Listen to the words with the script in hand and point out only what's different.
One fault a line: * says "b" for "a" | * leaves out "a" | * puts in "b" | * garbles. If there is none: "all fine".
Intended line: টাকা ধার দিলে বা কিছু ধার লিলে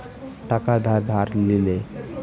* leaves out "দিলে বা কিছু"